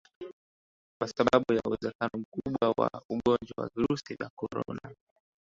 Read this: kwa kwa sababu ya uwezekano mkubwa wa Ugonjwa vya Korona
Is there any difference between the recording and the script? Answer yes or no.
yes